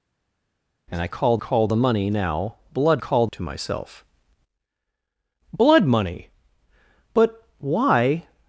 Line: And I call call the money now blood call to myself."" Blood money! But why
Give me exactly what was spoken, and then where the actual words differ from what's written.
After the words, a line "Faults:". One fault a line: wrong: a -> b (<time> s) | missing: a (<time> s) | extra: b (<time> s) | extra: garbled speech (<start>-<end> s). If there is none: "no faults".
And I call call the money now blood call to myself."" Blood money! But why
Faults:
no faults